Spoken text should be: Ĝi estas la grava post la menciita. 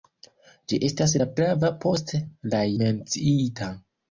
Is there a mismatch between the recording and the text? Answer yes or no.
no